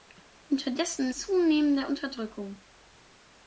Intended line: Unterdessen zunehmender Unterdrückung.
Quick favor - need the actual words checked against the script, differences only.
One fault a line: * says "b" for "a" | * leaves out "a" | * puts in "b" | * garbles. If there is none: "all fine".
all fine